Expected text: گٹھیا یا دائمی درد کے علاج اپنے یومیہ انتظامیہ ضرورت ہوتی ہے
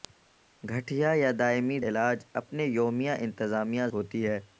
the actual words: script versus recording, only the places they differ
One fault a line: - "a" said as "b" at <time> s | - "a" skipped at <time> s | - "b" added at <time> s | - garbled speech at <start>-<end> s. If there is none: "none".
- "درد کے" skipped at 1.8 s
- "ضرورت" skipped at 3.9 s